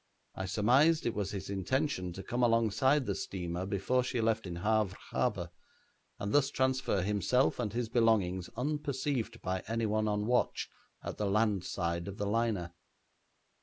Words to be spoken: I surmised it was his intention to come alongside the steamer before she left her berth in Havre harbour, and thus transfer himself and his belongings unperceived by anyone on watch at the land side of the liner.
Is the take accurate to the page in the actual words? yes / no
no